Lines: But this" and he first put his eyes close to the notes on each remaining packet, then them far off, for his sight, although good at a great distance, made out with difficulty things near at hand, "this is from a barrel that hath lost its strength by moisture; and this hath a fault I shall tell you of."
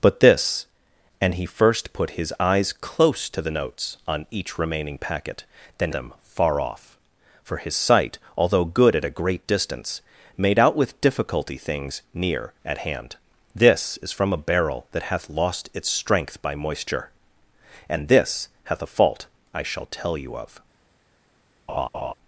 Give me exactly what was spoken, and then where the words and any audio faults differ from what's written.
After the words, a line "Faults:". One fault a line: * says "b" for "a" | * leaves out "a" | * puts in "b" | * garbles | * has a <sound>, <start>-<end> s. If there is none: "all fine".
But this" and he first put his eyes close to the notes on each remaining packet, then them far off, for his sight, although good at a great distance, made out with difficulty things near at hand, "this is from a barrel that hath lost its strength by moisture; and this hath a fault I shall tell you of."
Faults:
* has a laugh, 21.7-22.1 s